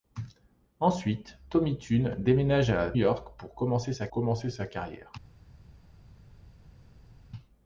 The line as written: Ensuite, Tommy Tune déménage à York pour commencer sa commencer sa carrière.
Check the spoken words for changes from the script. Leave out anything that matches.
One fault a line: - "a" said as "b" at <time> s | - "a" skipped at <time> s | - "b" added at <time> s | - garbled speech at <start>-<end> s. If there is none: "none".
none